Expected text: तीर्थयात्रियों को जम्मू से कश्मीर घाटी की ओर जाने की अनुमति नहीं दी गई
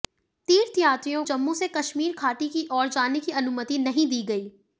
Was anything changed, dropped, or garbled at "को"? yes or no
yes